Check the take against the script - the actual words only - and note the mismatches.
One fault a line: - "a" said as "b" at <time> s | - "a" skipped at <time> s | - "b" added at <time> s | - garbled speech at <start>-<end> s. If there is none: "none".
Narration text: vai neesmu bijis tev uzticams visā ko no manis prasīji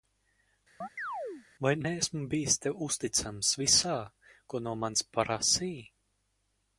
none